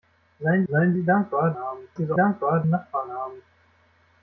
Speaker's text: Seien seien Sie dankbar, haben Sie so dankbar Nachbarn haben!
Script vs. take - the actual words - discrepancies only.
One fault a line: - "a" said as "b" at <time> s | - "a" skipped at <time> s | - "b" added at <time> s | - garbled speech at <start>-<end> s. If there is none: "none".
none